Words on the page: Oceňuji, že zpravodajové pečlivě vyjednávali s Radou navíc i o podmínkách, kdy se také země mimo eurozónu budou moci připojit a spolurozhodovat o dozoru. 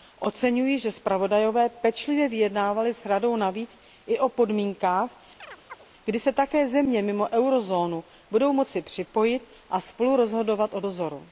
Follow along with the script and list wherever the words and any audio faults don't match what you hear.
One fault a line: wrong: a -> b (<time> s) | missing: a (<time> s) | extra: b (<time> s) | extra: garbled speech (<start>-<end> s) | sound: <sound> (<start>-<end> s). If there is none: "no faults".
sound: chirp (5.4-5.9 s)